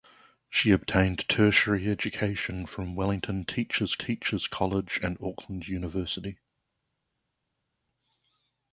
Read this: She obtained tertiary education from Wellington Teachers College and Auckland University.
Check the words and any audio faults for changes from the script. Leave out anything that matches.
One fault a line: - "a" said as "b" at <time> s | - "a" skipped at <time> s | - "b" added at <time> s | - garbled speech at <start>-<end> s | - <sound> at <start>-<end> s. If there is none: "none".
- "Teachers" added at 3.9 s